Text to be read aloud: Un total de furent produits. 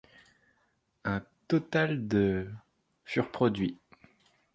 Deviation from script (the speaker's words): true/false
false